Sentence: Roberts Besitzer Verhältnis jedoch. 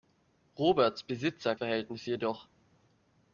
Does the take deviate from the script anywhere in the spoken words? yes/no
no